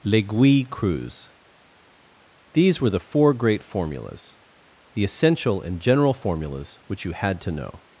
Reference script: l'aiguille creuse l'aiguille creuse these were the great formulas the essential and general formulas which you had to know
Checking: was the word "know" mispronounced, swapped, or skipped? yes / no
no